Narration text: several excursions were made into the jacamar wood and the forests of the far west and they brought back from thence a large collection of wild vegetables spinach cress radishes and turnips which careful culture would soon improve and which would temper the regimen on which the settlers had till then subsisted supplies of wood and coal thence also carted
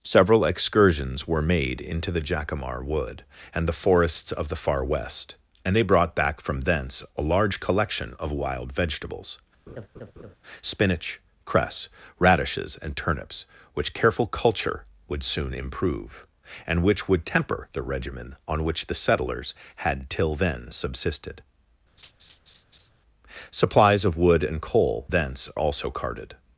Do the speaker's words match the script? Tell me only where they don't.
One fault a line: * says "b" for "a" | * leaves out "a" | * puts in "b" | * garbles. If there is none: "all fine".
all fine